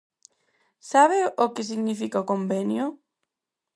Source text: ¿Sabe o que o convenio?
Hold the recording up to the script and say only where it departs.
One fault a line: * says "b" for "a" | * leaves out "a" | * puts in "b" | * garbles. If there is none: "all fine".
* puts in "significa"